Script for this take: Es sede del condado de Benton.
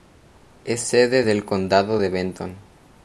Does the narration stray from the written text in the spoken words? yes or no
no